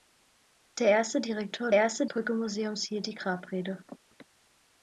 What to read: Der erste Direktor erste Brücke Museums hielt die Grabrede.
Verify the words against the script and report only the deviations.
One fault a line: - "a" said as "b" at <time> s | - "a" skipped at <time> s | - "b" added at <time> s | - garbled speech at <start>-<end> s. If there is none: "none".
none